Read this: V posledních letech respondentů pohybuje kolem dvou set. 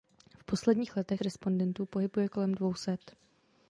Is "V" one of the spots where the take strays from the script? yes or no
no